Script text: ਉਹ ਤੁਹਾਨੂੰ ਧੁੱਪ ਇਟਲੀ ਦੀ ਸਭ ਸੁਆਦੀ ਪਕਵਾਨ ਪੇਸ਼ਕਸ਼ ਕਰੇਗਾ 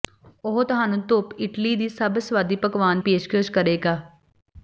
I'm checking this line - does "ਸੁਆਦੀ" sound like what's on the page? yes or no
yes